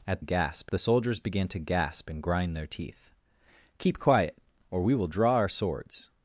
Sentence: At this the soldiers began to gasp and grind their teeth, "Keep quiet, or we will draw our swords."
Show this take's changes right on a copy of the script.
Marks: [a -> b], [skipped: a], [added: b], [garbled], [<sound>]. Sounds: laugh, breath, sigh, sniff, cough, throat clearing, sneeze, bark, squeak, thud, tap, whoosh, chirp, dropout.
At [this -> gasp] the soldiers began to gasp and grind their teeth, "Keep quiet, or we will draw our swords."